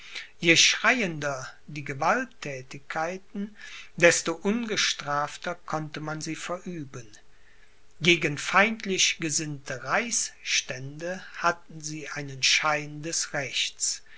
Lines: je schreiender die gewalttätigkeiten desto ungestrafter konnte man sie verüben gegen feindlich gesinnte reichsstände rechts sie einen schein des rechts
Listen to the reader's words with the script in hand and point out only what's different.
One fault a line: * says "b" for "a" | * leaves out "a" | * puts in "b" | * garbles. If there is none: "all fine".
* says "hatten" for "rechts"